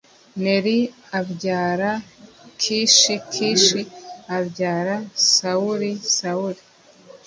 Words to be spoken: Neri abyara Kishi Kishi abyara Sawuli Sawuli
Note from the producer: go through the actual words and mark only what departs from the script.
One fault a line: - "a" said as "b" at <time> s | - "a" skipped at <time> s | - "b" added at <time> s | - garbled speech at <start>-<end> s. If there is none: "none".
none